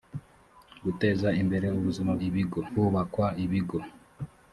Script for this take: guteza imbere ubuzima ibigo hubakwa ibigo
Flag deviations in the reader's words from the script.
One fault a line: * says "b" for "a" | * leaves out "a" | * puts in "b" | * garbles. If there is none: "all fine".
all fine